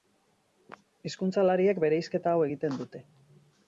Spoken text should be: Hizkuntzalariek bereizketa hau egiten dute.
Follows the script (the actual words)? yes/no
yes